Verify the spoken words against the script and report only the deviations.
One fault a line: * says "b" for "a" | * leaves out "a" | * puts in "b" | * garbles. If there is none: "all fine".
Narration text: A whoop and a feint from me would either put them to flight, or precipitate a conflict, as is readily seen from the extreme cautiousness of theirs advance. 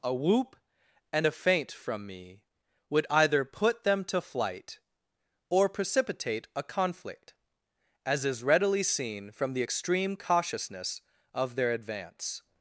* says "their" for "theirs"